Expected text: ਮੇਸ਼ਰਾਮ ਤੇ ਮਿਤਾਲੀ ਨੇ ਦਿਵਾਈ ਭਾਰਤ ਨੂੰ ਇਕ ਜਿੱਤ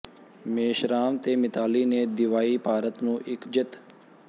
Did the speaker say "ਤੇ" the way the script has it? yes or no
yes